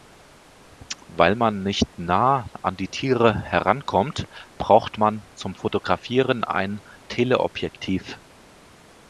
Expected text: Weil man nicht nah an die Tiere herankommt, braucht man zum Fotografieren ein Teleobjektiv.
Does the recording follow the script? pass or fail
pass